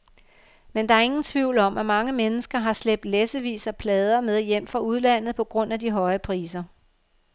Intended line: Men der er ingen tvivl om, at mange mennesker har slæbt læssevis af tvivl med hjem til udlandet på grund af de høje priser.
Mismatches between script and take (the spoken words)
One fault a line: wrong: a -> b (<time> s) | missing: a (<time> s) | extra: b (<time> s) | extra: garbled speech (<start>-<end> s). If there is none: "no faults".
wrong: tvivl -> plader (3.8 s)
wrong: til -> fra (4.7 s)